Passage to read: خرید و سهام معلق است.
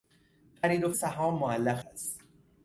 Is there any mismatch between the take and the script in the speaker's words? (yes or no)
no